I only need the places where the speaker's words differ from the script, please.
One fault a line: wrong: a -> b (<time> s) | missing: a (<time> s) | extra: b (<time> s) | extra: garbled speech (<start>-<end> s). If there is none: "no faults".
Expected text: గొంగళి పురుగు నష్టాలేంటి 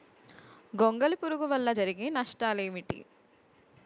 extra: వల్ల జరిగే (1.5 s)